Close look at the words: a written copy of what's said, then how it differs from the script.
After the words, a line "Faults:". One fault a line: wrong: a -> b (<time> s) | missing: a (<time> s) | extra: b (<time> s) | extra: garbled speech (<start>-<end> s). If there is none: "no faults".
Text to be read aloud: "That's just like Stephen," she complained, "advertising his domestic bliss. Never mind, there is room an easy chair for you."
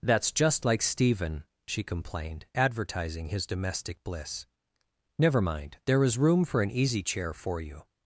"That's just like Stephen," she complained, "advertising his domestic bliss. Never mind, there is room for an easy chair for you."
Faults:
extra: for (6.4 s)